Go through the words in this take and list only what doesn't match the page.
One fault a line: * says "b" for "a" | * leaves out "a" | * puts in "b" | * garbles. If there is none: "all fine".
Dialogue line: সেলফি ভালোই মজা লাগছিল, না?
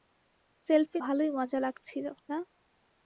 all fine